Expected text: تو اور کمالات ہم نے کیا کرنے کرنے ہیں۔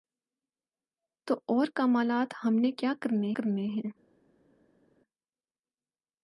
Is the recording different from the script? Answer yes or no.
no